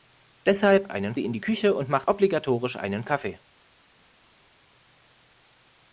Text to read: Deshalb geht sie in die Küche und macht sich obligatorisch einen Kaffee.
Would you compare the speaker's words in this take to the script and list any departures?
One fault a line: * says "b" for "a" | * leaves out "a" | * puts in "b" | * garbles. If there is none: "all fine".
* says "einen" for "geht"
* leaves out "sich"